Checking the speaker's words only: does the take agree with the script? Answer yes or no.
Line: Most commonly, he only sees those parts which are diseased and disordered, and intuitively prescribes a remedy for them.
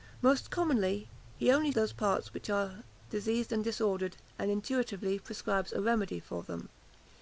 no